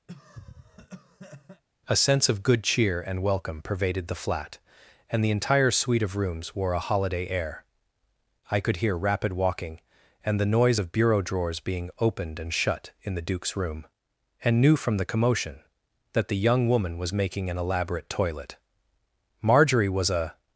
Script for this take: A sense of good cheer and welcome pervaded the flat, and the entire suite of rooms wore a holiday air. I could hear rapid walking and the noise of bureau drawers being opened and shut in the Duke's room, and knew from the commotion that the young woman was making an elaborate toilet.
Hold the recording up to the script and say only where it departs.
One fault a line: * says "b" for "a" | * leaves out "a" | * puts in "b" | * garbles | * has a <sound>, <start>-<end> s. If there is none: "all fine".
* has a cough, 0.1-1.6 s
* puts in "Marjorie was a"